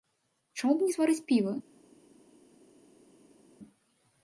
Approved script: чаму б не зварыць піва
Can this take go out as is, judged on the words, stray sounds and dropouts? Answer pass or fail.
pass